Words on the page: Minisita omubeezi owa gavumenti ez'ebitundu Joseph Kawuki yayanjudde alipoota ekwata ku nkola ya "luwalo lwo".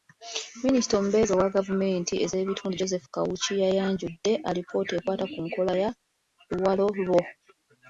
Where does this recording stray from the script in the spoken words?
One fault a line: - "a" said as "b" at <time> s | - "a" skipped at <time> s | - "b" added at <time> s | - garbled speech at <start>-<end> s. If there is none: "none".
none